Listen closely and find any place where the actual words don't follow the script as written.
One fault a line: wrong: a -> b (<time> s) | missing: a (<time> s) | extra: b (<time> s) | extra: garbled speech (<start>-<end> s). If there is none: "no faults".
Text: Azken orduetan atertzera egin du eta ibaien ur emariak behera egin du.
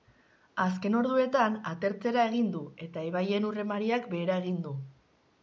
no faults